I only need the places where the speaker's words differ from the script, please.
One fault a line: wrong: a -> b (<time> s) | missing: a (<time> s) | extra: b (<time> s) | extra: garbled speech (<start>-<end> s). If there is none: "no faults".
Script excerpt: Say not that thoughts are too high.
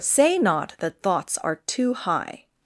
no faults